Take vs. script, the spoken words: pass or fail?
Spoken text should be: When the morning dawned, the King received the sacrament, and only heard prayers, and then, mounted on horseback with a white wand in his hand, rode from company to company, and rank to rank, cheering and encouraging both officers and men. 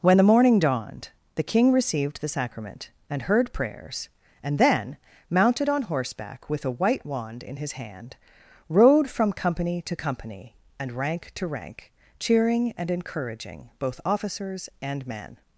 fail